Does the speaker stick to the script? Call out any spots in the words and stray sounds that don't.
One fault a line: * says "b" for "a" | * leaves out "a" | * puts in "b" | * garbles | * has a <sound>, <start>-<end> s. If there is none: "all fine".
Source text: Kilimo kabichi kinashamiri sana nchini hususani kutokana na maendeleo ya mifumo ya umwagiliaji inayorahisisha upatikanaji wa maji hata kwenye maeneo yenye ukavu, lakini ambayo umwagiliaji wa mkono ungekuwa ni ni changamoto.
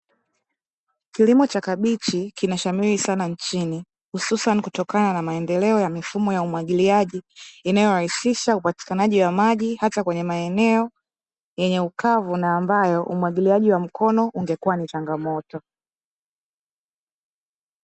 * puts in "cha"
* says "na" for "lakini"
* leaves out "ni"